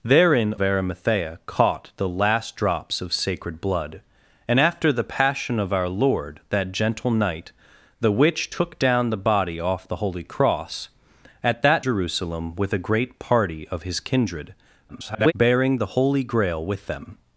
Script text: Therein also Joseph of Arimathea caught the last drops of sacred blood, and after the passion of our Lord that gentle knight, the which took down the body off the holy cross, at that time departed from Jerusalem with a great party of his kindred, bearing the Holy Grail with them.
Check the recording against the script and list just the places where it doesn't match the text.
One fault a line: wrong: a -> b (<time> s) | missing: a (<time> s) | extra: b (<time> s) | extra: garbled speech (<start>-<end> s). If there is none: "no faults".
missing: also Joseph of (0.6 s)
missing: time departed from (11.9 s)
extra: garbled speech (14.9-15.3 s)